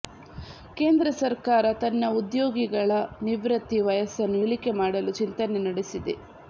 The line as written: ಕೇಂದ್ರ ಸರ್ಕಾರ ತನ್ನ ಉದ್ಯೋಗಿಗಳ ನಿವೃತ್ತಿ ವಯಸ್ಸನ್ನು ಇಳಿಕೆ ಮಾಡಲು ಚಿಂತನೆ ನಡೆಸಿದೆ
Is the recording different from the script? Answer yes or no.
no